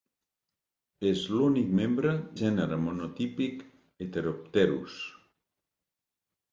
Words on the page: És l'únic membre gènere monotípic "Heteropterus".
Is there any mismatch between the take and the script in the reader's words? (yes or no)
no